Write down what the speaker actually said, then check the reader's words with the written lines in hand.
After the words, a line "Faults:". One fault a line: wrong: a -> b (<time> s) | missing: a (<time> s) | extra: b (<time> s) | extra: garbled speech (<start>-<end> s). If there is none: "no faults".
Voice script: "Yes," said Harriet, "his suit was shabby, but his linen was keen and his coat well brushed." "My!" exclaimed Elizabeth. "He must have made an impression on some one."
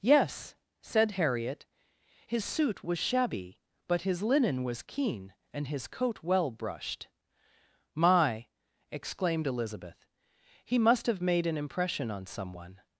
"Yes," said Harriet, "his suit was shabby, but his linen was keen and his coat well brushed." "My!" exclaimed Elizabeth. "He must have made an impression on some one."
Faults:
no faults